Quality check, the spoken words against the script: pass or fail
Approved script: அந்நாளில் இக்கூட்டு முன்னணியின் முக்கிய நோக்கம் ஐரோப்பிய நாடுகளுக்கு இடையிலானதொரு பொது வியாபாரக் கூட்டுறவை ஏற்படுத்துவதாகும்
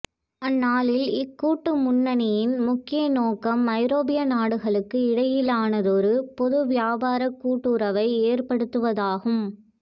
pass